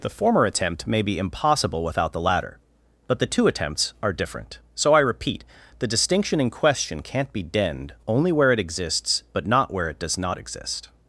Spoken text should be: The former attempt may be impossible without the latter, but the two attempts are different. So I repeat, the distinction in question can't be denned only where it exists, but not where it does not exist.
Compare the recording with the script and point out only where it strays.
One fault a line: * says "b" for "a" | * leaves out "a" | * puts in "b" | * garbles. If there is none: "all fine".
all fine